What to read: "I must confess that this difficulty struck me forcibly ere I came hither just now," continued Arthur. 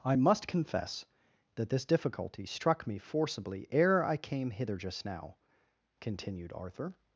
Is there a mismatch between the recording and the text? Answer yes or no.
no